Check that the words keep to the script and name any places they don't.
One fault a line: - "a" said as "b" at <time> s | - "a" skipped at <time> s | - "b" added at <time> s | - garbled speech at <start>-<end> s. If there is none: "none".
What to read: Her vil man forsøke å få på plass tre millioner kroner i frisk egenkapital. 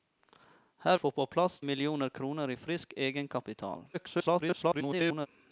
- "vil man forsøke" skipped at 1.0 s
- "tre" skipped at 1.6 s
- garbled speech at 3.9-5.3 s